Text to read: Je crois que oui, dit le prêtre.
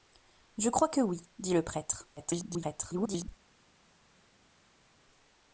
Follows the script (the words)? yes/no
no